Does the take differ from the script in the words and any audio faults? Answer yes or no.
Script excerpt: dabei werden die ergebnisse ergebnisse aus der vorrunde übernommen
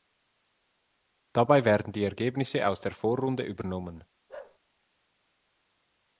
yes